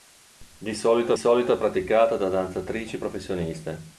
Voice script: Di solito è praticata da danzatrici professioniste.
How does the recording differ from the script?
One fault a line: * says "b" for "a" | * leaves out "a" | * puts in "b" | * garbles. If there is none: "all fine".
* puts in "solito"